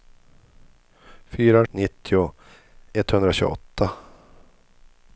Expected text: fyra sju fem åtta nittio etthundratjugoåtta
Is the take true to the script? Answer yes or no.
no